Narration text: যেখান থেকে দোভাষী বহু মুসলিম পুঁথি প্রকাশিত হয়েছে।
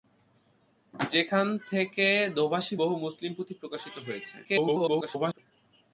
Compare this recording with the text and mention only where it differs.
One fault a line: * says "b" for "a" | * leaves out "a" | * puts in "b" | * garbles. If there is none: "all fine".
* garbles